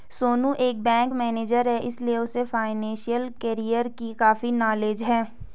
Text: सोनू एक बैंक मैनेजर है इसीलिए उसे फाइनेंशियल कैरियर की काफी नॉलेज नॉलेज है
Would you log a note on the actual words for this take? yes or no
yes